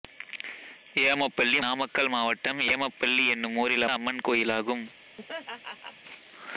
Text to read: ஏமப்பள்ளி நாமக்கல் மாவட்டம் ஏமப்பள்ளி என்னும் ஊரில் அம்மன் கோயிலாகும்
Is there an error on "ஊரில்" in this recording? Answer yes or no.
no